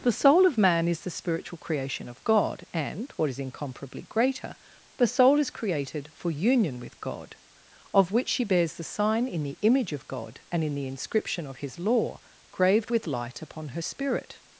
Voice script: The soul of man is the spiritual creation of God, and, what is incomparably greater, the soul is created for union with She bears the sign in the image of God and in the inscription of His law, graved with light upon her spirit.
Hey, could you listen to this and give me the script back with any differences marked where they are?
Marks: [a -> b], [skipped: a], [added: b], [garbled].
The soul of man is the spiritual creation of God, and, what is incomparably greater, the soul is created for union with [added: God of which] She bears the sign in the image of God and in the inscription of His law, graved with light upon her spirit.